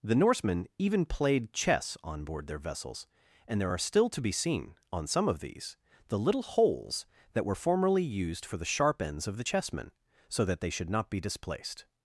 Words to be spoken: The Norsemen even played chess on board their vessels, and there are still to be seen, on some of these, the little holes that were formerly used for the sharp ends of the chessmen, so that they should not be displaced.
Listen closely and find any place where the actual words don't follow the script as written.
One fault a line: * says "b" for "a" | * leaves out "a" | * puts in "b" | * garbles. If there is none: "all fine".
all fine